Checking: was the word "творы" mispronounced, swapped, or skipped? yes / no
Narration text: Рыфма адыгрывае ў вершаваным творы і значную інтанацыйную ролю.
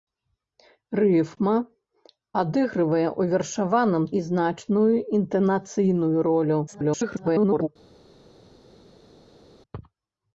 yes